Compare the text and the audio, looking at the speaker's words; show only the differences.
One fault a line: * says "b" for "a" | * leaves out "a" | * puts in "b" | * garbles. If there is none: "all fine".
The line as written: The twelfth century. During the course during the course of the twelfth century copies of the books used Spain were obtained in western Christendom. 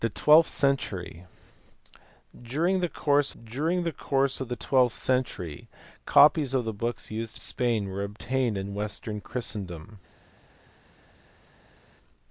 all fine